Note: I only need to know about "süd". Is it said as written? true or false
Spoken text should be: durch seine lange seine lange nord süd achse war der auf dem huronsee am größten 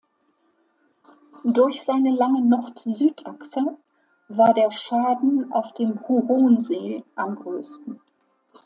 true